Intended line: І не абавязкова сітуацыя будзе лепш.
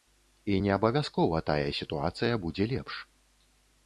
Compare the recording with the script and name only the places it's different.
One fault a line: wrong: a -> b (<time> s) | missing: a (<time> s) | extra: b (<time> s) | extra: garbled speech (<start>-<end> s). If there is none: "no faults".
extra: тая (1.5 s)